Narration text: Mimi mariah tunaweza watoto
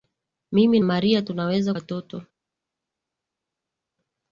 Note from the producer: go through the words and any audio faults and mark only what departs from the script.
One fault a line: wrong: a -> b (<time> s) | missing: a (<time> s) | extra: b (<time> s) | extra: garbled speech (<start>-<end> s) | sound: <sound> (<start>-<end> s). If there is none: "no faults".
no faults